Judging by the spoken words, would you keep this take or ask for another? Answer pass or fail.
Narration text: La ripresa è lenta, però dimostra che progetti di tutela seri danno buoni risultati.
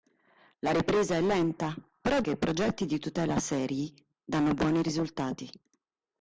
fail